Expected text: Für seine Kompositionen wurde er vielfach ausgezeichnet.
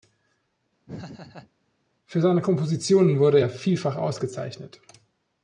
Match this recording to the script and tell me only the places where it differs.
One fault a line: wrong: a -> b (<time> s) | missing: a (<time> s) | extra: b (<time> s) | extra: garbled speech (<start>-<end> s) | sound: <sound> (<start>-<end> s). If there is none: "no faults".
sound: laugh (0.9-1.5 s)